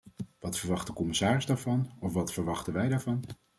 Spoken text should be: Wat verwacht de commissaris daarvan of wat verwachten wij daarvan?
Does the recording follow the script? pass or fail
pass